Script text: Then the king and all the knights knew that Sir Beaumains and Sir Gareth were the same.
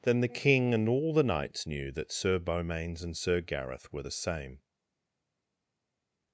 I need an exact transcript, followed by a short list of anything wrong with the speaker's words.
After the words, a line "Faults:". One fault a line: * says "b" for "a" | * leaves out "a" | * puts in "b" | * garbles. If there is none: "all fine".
Then the king and all the knights knew that Sir Beaumains and Sir Gareth were the same.
Faults:
all fine